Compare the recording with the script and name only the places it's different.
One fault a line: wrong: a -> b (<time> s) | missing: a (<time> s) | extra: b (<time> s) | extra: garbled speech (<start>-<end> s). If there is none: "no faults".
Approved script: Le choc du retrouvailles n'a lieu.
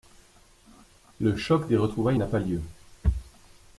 wrong: du -> des (1.7 s)
extra: pas (2.3 s)